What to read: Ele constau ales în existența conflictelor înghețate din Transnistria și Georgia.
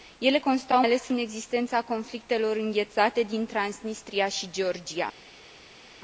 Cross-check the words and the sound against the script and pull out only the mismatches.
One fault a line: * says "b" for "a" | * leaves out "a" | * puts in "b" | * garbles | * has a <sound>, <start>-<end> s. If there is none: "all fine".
all fine